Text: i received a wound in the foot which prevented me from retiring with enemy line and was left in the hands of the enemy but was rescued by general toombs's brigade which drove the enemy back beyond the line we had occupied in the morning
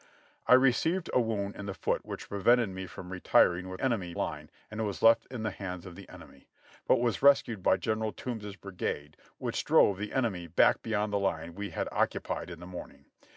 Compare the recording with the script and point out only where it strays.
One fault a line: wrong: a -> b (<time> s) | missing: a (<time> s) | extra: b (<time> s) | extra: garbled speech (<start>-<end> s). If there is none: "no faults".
no faults